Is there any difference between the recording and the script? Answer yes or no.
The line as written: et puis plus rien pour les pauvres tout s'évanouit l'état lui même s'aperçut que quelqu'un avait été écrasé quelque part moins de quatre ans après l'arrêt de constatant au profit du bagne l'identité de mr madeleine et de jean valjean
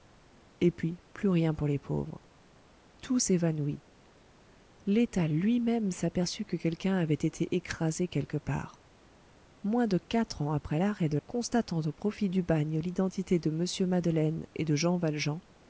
no